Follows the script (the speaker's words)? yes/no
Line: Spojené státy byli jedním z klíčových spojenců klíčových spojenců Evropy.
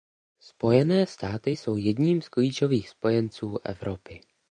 no